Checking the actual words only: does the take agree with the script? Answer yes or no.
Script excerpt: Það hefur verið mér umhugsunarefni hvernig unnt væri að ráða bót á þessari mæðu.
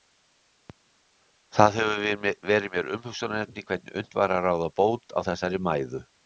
yes